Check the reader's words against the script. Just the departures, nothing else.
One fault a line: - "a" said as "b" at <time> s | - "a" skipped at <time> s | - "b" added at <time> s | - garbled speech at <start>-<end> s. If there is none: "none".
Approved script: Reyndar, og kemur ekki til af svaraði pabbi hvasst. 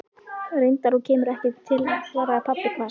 none